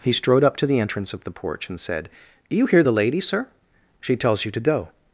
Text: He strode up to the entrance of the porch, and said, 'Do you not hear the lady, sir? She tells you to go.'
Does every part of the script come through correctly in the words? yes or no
no